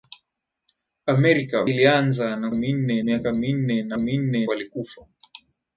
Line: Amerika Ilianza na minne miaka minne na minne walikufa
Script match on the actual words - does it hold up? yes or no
yes